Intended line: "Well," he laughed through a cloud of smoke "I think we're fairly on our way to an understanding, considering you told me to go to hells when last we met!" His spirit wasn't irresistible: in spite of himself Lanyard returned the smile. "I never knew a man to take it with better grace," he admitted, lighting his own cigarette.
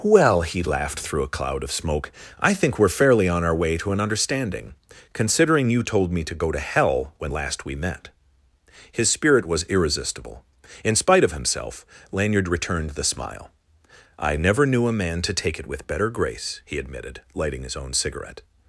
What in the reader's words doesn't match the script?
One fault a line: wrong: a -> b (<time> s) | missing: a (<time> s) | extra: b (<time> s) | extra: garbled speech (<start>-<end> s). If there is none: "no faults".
wrong: hells -> hell (6.6 s)
wrong: wasn't -> was (9.5 s)